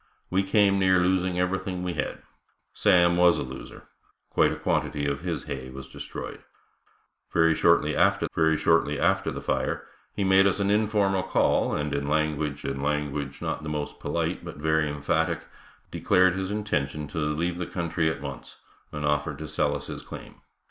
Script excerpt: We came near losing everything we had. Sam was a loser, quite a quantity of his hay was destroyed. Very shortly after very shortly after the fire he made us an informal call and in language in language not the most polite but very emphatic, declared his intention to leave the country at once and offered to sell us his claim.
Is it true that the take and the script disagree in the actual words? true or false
false